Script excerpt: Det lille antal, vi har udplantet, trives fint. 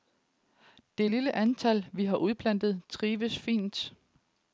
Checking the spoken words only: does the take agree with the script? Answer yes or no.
yes